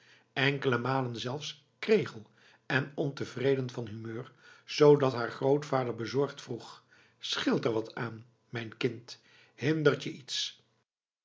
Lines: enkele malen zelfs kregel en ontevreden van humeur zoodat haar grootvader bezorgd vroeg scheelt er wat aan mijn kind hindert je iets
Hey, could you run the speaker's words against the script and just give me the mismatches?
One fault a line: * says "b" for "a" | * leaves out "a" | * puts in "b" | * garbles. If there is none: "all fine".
all fine